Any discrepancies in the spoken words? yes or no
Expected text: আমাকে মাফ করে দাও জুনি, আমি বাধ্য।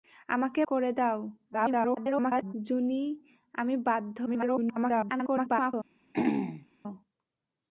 yes